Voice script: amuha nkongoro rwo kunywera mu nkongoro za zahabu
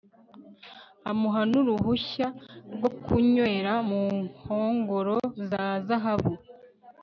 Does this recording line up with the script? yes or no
no